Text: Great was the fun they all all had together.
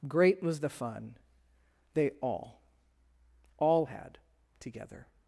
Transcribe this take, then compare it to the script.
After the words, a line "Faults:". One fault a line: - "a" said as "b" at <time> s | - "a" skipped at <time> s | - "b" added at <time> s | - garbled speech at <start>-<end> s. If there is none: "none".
Great was the fun they all all had together.
Faults:
none